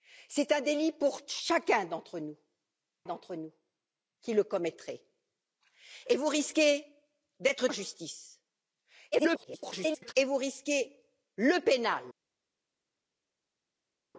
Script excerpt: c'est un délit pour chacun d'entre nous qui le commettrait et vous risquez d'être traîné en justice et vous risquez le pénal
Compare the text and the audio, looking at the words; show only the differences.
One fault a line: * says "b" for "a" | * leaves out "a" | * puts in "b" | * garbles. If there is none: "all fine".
* puts in "d'entre nous"
* leaves out "traîné"
* garbles